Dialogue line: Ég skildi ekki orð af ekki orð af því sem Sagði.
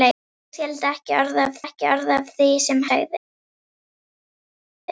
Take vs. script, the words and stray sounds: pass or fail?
pass